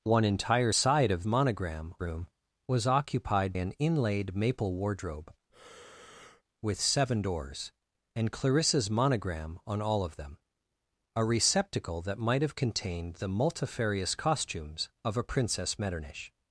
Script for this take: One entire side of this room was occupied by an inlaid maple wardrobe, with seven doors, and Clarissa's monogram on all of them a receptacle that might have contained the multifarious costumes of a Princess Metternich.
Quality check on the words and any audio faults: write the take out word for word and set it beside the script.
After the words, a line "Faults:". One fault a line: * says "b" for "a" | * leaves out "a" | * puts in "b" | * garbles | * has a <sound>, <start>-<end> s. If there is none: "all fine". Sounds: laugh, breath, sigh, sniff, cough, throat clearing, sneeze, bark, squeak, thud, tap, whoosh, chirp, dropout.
One entire side of monogram room was occupied an inlaid maple wardrobe, with seven doors, and Clarissa's monogram on all of them a receptacle that might have contained the multifarious costumes of a Princess Metternich.
Faults:
* says "monogram" for "this"
* leaves out "by"
* has a breath, 5.5-6.4 s